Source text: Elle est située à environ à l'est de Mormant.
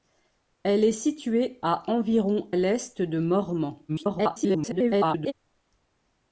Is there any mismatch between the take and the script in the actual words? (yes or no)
yes